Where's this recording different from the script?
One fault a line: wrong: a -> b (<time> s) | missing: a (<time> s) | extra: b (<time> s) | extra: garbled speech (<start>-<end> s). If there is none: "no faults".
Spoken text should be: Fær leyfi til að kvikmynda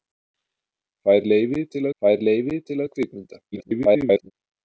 extra: fær leyfi til (2.0 s)
extra: garbled speech (3.5-4.3 s)